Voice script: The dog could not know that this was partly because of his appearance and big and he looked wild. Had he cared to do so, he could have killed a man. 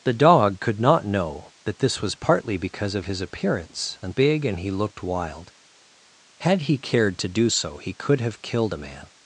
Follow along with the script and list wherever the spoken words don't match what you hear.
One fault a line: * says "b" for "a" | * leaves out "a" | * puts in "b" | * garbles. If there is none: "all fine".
all fine